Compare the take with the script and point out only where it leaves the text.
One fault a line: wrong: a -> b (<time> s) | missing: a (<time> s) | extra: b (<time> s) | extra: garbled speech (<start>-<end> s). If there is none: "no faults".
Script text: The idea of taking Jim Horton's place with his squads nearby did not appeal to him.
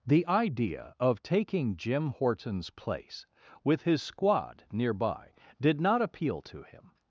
wrong: squads -> squad (4.0 s)